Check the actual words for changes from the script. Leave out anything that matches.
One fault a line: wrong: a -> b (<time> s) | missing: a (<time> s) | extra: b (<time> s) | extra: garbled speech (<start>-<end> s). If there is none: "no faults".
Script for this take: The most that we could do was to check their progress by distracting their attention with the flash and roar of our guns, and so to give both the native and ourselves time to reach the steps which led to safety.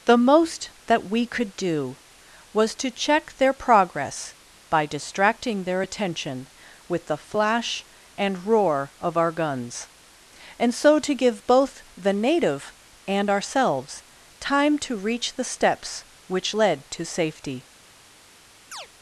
no faults